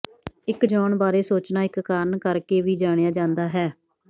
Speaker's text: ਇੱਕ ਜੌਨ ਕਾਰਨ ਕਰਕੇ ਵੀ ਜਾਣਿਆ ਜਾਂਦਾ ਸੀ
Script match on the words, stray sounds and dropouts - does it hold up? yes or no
no